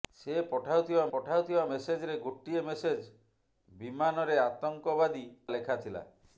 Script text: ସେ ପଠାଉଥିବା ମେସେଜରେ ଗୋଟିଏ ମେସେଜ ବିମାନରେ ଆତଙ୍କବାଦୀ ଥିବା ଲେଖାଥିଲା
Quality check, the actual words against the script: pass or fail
fail